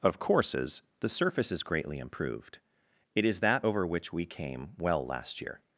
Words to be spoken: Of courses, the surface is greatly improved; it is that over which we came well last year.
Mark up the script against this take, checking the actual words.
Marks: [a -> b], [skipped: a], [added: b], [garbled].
Of courses, the surface is greatly improved; it is that over which we came well last year.